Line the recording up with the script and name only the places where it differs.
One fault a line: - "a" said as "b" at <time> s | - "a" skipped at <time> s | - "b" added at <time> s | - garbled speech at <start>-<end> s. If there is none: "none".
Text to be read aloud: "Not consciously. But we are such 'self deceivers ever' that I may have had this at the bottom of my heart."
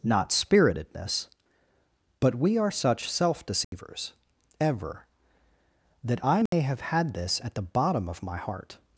- "consciously" said as "spiritedness" at 0.3 s